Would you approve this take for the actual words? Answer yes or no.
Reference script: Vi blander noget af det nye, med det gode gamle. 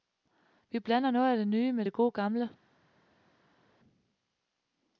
yes